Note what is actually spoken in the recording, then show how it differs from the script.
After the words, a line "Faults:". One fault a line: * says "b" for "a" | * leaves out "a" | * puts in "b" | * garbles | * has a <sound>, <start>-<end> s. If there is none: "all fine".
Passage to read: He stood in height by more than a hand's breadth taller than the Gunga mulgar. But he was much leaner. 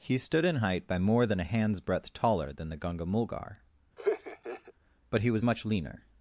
He stood in height by more than a hand's breadth taller than the Gunga mulgar. But he was much leaner.
Faults:
* has a laugh, 4.0-4.7 s